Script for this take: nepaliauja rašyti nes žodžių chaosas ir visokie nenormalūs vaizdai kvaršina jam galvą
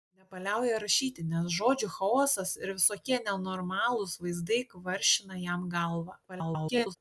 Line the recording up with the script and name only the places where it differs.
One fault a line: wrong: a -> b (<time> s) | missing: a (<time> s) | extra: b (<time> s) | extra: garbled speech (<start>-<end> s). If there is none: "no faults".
extra: garbled speech (6.3-7.0 s)